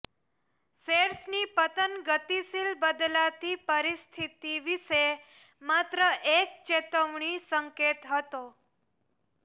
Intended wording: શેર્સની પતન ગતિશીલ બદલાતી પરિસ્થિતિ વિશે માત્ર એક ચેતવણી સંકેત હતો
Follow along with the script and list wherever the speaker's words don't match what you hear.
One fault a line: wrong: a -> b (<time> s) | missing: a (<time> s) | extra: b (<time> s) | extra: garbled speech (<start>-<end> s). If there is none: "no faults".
no faults